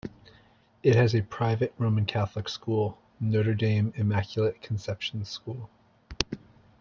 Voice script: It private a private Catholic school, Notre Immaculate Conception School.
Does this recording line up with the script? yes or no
no